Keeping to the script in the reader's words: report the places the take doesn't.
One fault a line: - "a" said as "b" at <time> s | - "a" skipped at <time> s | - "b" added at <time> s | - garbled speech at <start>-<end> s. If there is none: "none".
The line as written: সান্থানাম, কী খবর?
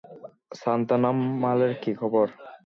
- "মালের" added at 1.4 s